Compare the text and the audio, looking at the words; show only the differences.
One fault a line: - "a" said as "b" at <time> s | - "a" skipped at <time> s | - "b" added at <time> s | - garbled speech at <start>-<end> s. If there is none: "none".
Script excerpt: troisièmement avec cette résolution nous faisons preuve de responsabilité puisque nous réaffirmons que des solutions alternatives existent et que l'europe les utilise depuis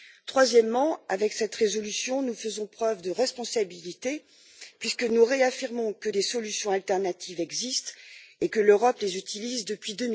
none